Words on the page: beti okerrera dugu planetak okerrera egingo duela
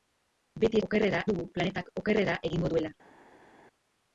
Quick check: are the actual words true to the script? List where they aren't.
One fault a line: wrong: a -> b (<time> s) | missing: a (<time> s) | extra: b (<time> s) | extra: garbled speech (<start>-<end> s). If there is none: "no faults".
no faults